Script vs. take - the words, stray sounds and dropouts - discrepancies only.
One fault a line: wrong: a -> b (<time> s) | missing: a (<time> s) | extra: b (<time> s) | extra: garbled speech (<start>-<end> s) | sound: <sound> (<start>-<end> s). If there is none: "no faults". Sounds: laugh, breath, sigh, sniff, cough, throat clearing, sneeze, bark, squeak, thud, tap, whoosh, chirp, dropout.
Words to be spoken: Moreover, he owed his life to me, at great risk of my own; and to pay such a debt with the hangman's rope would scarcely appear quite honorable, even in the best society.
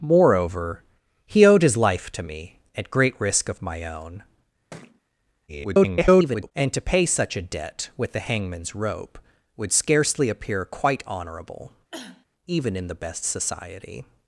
sound: thud (4.7-5.0 s)
extra: garbled speech (5.5-6.5 s)
sound: cough (11.9-12.3 s)